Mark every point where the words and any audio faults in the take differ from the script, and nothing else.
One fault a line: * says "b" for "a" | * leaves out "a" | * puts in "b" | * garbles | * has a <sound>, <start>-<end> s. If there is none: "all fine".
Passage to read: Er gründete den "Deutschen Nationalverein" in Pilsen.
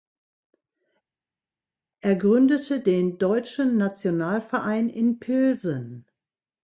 all fine